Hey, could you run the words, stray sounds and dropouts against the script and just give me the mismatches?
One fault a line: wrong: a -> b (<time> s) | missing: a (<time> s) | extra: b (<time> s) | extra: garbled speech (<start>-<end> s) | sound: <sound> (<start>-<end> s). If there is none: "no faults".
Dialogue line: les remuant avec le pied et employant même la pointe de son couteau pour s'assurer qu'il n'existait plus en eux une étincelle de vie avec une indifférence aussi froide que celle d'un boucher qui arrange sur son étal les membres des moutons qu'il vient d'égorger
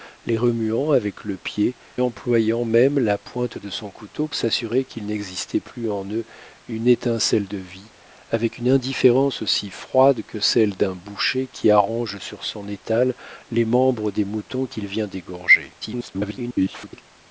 missing: et (1.8 s)
missing: pour (4.3 s)
extra: garbled speech (15.8-17.0 s)